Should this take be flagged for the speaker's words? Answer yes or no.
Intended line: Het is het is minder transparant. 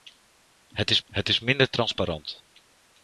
no